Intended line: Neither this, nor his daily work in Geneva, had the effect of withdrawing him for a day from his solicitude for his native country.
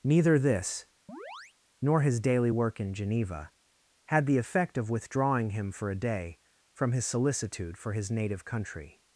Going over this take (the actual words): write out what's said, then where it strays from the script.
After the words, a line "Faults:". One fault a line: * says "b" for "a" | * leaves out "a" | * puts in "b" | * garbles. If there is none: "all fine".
Neither this, nor his daily work in Geneva, had the effect of withdrawing him for a day from his solicitude for his native country.
Faults:
all fine